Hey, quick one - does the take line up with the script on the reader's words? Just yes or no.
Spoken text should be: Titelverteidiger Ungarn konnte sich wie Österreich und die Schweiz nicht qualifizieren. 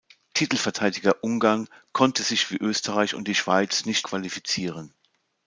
yes